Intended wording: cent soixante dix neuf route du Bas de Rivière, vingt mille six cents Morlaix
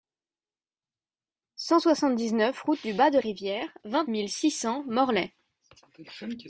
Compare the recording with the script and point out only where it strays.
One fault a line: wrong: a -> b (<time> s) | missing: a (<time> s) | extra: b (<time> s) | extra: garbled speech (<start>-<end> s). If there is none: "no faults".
no faults